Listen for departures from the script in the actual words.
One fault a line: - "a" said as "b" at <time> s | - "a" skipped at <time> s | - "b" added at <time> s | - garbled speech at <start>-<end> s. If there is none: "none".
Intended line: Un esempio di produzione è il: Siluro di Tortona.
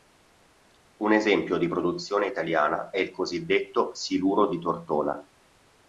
- "italiana" added at 2.3 s
- "cosiddetto" added at 3.1 s